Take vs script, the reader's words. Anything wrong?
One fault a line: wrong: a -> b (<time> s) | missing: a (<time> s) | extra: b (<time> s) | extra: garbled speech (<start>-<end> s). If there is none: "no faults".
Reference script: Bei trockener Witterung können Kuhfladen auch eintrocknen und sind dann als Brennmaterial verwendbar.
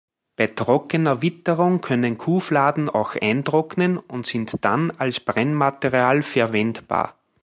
no faults